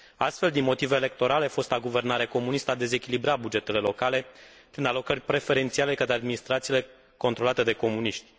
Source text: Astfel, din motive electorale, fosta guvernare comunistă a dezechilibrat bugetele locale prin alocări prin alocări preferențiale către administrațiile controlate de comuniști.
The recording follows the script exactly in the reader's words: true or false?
false